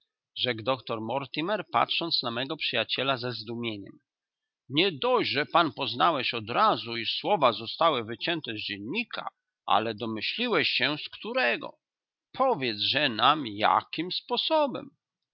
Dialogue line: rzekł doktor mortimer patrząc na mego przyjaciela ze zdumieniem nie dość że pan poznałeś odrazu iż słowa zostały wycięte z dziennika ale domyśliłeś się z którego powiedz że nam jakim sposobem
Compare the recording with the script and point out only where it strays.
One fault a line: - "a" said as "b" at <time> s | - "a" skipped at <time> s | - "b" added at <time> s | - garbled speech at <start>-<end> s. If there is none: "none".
none